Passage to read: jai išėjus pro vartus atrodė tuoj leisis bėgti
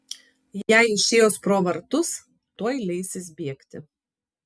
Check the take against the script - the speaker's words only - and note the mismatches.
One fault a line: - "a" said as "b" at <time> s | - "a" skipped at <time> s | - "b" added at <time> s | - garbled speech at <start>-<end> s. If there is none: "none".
- "atrodė" skipped at 2.1 s